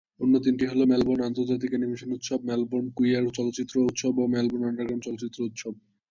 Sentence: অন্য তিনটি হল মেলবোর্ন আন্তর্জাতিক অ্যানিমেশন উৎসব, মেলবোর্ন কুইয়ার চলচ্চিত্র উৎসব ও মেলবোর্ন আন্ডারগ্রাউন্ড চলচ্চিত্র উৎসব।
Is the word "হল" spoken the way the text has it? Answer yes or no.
yes